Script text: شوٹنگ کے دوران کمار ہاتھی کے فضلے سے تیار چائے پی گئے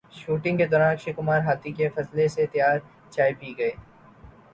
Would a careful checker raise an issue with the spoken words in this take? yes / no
yes